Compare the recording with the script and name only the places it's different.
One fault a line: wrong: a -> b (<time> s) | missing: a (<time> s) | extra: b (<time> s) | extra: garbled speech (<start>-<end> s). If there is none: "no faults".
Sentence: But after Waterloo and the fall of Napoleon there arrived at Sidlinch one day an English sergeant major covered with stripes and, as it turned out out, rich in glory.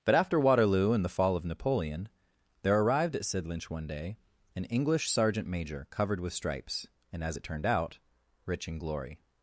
missing: out (8.0 s)